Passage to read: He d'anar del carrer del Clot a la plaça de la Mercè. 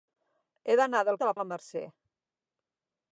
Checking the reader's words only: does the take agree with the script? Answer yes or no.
no